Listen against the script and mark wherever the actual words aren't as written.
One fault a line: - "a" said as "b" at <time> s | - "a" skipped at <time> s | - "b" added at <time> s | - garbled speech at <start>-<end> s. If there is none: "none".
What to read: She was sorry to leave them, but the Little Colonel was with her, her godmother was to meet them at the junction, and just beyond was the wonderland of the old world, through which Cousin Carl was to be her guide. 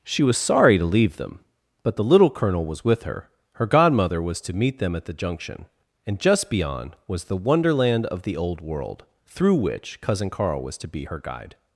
none